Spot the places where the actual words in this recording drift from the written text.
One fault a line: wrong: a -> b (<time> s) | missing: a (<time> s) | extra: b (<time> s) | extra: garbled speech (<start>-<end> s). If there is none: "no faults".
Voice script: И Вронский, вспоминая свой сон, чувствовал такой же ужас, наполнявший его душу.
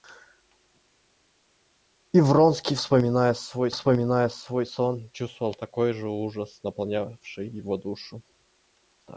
extra: вспоминая свой (3.7 s)